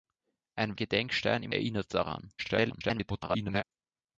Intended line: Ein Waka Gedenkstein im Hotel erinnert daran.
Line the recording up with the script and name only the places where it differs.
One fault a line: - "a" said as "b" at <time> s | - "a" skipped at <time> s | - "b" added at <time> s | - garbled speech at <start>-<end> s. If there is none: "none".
- "Waka" skipped at 0.8 s
- "Hotel" skipped at 1.5 s
- garbled speech at 2.4-3.6 s